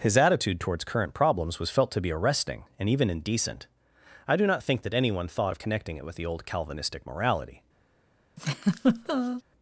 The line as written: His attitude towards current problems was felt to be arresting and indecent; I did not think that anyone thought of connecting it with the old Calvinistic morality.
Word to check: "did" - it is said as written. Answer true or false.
false